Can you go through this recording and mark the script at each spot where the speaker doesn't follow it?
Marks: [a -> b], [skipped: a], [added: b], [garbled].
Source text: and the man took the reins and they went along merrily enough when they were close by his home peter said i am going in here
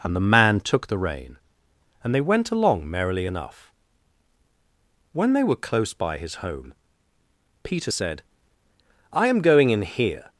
and the man took the [reins -> rein] and they went along merrily enough when they were close by his home peter said i am going in here